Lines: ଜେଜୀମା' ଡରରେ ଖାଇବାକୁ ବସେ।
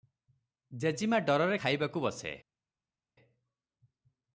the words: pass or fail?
pass